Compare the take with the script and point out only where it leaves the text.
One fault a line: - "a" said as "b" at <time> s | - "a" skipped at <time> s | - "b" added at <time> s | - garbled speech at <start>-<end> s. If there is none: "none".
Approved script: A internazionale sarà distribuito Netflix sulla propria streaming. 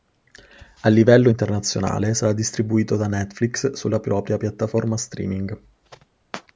- "livello" added at 0.9 s
- "da" added at 2.9 s
- "piattaforma" added at 4.4 s